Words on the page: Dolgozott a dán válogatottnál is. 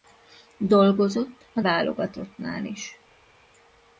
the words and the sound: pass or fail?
fail